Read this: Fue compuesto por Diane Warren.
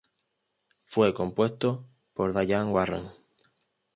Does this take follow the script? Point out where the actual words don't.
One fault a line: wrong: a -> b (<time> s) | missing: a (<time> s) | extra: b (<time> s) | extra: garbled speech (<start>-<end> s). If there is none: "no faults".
no faults